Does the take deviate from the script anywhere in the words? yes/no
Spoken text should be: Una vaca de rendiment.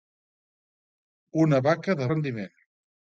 no